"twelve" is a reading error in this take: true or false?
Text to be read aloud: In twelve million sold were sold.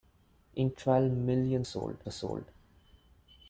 false